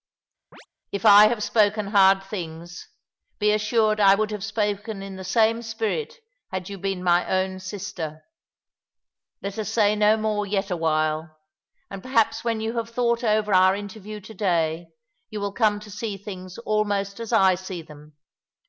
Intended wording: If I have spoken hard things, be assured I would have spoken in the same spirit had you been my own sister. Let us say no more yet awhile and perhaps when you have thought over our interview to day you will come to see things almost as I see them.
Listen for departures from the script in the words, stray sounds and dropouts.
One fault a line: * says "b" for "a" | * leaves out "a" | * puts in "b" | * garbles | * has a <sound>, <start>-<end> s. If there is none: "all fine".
* has a chirp, 0.5-0.7 s